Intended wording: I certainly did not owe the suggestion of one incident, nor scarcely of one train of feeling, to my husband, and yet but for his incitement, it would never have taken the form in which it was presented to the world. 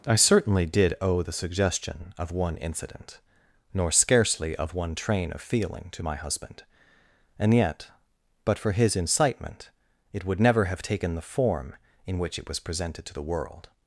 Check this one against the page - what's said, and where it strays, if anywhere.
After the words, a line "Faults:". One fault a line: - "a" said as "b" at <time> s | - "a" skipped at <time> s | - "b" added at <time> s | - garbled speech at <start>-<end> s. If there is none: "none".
I certainly did owe the suggestion of one incident, nor scarcely of one train of feeling, to my husband, and yet but for his incitement, it would never have taken the form in which it was presented to the world.
Faults:
- "not" skipped at 0.9 s